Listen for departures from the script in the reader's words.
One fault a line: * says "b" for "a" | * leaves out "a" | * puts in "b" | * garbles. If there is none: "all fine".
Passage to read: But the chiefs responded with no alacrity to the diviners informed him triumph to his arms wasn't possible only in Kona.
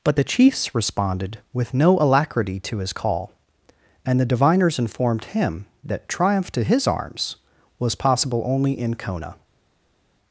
* puts in "his call and"
* puts in "that"
* says "was" for "wasn't"